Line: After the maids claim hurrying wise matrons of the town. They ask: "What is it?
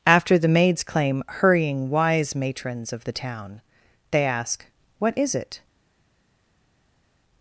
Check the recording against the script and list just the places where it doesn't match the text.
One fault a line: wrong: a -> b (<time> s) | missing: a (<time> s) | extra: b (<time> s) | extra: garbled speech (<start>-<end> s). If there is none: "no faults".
no faults